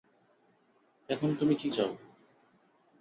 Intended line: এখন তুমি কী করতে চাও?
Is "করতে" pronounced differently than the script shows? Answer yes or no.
yes